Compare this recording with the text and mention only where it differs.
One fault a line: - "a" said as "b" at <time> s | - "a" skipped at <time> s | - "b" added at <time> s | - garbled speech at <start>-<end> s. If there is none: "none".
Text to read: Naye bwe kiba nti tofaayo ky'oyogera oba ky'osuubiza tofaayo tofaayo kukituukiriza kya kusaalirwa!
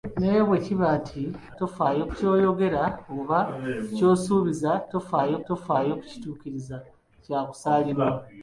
none